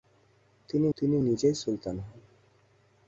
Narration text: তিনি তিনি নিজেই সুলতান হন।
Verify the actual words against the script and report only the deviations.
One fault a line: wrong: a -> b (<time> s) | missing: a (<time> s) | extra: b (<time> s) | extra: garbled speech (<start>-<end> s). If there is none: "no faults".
no faults